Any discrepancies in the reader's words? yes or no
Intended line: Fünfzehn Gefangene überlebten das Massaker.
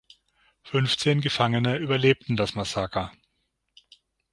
no